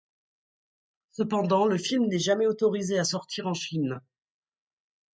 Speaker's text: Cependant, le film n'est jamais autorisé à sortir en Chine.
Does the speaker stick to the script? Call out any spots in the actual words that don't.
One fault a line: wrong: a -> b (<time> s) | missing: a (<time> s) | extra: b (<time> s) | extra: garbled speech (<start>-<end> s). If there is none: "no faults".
no faults